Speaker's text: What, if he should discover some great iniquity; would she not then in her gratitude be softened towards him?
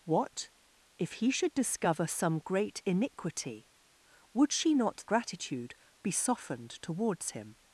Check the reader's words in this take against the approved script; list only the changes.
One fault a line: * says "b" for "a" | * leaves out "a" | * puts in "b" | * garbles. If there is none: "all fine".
* leaves out "then in her"